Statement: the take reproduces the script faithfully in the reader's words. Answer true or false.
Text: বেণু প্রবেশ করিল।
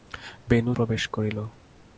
true